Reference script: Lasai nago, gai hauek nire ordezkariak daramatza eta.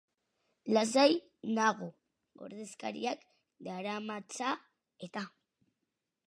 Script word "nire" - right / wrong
wrong